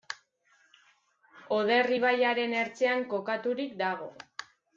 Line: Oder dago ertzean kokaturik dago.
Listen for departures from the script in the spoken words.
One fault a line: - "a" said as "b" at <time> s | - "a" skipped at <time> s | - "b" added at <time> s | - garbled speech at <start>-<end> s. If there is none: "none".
- "dago" said as "ibaiaren" at 2.0 s